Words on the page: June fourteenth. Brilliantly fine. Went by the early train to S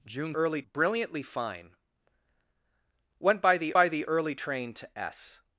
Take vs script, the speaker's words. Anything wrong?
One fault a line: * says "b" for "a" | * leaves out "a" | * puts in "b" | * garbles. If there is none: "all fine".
* says "early" for "fourteenth"
* puts in "by the"